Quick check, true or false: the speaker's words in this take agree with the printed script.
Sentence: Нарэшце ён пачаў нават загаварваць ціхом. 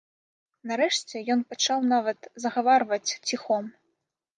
true